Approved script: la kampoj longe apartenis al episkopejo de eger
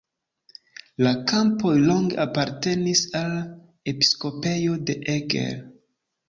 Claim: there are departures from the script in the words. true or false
false